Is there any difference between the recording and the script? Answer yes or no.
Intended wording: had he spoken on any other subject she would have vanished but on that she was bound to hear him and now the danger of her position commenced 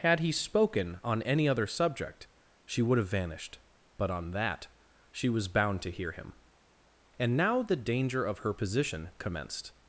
no